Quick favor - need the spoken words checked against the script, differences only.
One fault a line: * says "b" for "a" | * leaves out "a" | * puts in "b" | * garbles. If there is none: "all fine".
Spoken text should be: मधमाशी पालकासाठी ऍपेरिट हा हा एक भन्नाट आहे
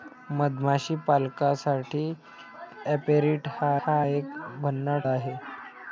all fine